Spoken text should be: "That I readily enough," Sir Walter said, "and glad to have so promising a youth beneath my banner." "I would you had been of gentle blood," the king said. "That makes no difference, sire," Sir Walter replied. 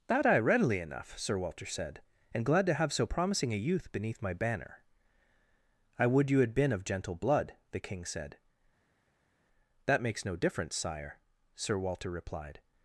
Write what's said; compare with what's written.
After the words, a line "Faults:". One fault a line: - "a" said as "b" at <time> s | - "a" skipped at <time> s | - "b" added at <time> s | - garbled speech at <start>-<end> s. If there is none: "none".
"That I readily enough," Sir Walter said, "and glad to have so promising a youth beneath my banner." "I would you had been of gentle blood," the king said. "That makes no difference, sire," Sir Walter replied.
Faults:
none